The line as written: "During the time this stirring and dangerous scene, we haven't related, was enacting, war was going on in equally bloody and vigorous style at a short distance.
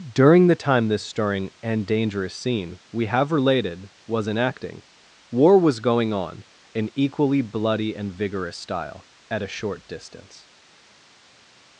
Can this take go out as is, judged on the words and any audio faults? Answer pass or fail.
fail